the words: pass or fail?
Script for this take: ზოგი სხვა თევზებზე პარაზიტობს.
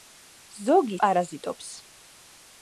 fail